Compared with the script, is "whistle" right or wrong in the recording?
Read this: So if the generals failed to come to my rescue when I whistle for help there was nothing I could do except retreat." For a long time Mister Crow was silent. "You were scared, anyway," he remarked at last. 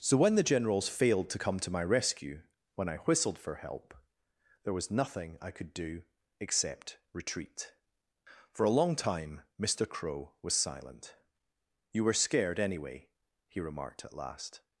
wrong